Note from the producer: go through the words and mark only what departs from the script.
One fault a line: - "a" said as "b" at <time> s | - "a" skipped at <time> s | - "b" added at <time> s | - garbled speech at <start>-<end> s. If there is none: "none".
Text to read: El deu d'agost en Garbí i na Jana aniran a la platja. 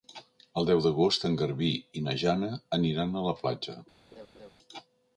none